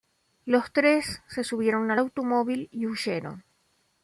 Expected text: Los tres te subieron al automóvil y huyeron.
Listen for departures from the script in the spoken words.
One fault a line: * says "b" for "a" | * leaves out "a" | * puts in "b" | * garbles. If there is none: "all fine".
* says "se" for "te"